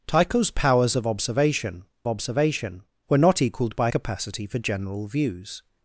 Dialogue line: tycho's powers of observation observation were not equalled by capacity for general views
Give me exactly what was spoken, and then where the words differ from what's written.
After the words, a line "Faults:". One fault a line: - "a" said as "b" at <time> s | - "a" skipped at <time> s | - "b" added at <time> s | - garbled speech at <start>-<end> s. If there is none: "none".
tycho's powers of observation observation were not equalled by capacity for general views
Faults:
none